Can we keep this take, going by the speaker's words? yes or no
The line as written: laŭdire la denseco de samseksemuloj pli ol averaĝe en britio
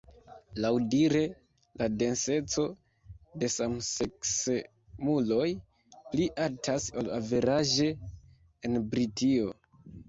no